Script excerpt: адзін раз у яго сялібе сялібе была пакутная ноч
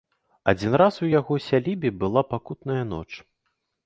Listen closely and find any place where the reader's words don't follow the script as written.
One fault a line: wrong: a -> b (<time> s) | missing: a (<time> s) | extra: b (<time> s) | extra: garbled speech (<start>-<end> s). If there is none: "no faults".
missing: сялібе (1.9 s)